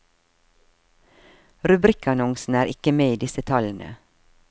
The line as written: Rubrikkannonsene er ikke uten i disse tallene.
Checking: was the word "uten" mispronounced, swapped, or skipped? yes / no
yes